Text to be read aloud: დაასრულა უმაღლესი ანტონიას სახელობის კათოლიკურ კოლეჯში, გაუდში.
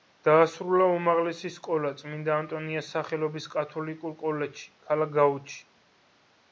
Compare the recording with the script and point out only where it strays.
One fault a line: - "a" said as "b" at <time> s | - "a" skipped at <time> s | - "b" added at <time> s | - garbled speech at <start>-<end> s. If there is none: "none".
- "სკოლა წმინდა" added at 1.6 s
- "ქალაქ" added at 4.9 s